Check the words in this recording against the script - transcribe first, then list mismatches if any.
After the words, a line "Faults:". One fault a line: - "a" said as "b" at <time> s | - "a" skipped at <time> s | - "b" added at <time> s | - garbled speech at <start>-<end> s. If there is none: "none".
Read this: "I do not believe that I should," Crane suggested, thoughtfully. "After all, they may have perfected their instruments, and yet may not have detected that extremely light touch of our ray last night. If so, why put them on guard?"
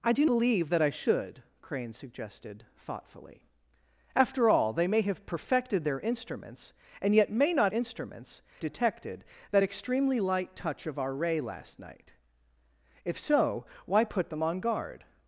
"I do believe that I should," Crane suggested, thoughtfully. "After all, they may have perfected their instruments, and yet may not instruments detected that extremely light touch of our ray last night. If so, why put them on guard?"
Faults:
- "not" skipped at 0.2 s
- "have" said as "instruments" at 7.7 s